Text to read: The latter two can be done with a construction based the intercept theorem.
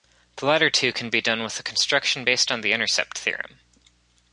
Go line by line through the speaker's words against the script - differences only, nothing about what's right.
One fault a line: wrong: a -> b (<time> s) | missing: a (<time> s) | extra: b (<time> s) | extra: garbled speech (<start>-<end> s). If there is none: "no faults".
extra: on (2.5 s)